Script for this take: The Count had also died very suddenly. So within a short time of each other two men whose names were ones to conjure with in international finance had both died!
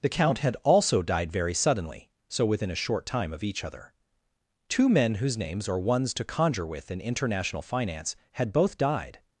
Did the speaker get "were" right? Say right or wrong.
wrong